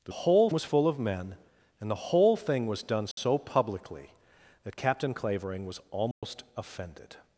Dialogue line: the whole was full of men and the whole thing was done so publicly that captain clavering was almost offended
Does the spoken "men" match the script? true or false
true